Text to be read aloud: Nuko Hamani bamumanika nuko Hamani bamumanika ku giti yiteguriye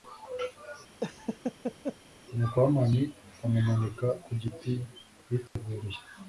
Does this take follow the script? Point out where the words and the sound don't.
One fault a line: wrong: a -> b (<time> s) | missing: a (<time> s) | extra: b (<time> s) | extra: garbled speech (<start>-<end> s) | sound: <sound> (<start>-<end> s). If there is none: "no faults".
sound: laugh (1.0-2.0 s)
missing: nuko Hamani bamumanika (4.1 s)
sound: dropout (5.5-5.6 s)